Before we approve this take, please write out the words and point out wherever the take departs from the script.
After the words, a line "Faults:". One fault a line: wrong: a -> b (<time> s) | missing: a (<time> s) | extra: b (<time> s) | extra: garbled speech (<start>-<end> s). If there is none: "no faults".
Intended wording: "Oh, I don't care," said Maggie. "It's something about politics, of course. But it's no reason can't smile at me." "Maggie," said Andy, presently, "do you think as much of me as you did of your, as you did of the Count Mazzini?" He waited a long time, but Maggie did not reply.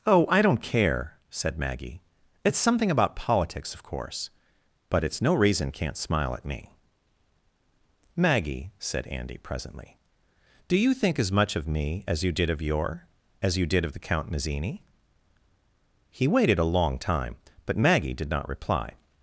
"Oh, I don't care," said Maggie. "It's something about politics, of course. But it's no reason can't smile at me." "Maggie," said Andy, presently, "do you think as much of me as you did of your, as you did of the Count Mazzini?" He waited a long time, but Maggie did not reply.
Faults:
no faults